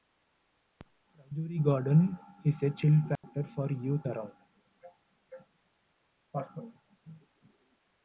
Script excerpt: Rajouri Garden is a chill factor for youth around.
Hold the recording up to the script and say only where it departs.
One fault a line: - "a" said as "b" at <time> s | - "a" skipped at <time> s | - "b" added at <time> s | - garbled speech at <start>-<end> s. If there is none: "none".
none